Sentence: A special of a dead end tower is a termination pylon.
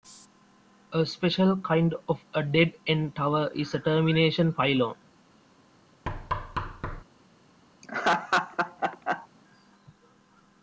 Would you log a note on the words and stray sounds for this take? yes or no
yes